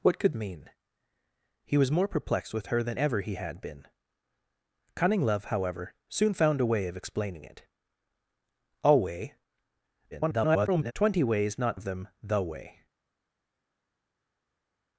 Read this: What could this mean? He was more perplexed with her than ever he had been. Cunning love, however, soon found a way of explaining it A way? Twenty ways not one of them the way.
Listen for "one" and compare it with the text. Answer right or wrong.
wrong